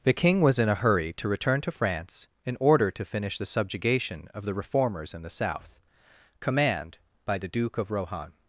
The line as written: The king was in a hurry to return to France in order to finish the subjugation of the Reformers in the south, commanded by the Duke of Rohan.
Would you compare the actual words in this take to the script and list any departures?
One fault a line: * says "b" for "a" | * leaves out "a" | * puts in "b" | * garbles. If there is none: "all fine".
* says "command" for "commanded"